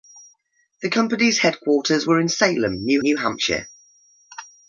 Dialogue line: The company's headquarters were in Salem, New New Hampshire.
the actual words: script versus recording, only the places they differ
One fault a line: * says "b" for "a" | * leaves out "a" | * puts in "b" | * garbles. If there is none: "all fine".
all fine